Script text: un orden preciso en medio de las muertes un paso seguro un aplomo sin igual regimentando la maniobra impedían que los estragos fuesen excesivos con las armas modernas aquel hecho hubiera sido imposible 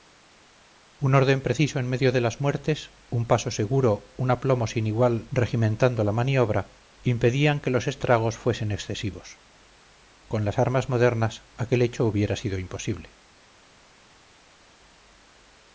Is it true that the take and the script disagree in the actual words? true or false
false